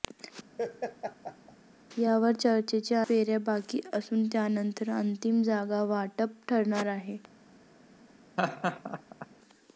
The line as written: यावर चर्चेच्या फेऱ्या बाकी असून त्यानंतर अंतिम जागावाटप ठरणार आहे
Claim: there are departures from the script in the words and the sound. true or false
true